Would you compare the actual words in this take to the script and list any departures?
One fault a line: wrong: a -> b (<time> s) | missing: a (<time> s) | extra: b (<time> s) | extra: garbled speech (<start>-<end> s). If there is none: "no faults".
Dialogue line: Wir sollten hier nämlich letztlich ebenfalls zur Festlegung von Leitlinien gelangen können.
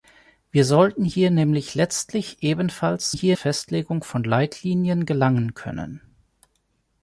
wrong: zur -> hier (3.1 s)